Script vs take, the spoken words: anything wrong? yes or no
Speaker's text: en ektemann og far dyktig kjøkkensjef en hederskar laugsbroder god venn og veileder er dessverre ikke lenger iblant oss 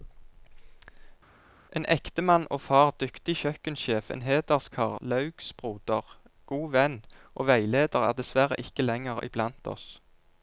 no